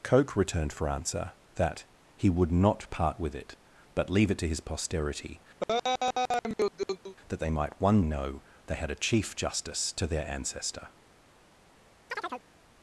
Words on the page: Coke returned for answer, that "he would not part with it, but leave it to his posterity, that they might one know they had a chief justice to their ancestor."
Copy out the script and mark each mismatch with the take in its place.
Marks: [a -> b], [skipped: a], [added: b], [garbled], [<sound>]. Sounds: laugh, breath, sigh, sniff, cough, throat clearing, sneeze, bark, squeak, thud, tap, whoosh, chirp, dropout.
Coke returned for answer, that "he would not part with it, but leave it to his posterity, [laugh] that they might one know they had a chief justice to their ancestor." [chirp]